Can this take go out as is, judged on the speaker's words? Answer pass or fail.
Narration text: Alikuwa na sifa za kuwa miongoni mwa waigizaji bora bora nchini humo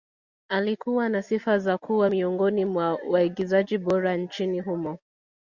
fail